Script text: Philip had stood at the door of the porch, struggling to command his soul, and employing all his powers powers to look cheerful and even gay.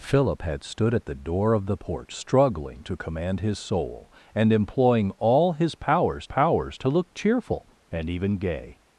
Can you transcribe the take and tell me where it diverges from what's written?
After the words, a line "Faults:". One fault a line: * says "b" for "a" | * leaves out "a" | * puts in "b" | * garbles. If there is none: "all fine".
Philip had stood at the door of the porch, struggling to command his soul, and employing all his powers powers to look cheerful and even gay.
Faults:
all fine